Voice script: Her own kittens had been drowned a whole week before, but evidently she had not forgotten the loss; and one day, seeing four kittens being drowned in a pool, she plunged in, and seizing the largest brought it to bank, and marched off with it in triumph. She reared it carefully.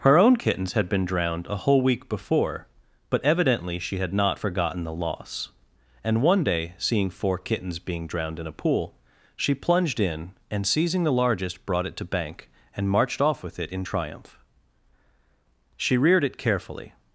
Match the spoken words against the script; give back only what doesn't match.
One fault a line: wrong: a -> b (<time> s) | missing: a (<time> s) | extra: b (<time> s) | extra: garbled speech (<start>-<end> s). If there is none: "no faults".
no faults